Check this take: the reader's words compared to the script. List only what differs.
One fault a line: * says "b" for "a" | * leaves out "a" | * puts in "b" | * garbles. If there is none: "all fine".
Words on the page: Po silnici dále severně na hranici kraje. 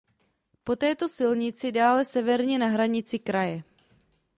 * puts in "této"